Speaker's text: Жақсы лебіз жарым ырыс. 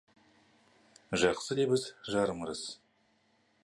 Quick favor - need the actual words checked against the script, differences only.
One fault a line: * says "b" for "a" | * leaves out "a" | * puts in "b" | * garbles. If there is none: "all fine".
all fine